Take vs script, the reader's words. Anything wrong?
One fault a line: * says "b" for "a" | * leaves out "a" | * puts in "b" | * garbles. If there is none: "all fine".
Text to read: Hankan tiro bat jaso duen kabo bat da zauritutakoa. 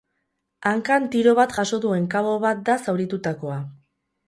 all fine